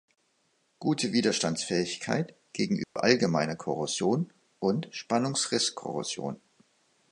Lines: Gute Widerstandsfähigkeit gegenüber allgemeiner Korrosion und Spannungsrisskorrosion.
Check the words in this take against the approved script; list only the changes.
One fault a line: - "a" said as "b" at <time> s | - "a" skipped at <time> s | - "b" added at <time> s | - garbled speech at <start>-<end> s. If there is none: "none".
none